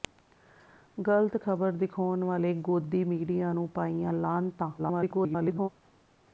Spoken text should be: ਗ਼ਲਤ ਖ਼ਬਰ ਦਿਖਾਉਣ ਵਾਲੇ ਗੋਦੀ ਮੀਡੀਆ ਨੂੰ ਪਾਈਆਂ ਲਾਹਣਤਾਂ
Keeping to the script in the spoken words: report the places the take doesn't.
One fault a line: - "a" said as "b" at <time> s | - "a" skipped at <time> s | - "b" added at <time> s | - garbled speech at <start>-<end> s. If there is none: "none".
- garbled speech at 4.8-5.7 s